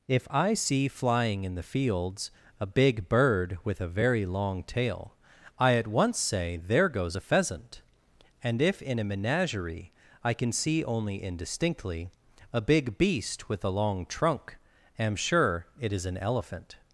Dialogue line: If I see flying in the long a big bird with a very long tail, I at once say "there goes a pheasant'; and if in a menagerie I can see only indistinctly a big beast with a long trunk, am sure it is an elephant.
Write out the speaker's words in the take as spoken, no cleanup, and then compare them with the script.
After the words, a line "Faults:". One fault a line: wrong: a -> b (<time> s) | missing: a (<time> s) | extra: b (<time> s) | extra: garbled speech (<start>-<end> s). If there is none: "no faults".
If I see flying in the fields a big bird with a very long tail, I at once say "there goes a pheasant'; and if in a menagerie I can see only indistinctly a big beast with a long trunk, am sure it is an elephant.
Faults:
wrong: long -> fields (1.6 s)